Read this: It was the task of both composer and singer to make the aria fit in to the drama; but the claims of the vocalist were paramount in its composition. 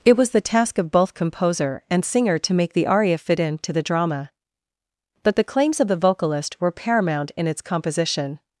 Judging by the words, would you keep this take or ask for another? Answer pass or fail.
pass